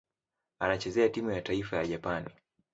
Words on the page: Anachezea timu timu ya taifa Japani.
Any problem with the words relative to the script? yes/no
yes